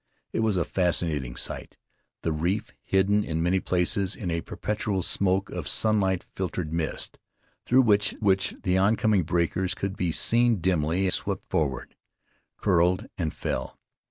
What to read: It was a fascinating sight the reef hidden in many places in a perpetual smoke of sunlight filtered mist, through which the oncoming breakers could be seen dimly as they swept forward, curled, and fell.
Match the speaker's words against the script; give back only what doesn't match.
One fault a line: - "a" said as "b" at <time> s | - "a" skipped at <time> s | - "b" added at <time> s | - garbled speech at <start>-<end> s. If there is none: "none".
- "which" added at 8.2 s
- "as they" skipped at 11.1 s